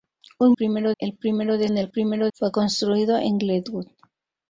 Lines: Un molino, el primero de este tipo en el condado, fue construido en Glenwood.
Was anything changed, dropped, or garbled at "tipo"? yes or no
yes